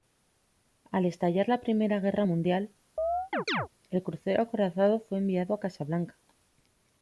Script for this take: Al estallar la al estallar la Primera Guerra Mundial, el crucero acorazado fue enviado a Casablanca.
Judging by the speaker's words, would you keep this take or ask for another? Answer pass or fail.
fail